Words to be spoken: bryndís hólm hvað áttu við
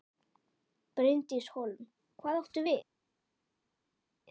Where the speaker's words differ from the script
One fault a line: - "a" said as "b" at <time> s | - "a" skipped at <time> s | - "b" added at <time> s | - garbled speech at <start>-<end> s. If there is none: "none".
none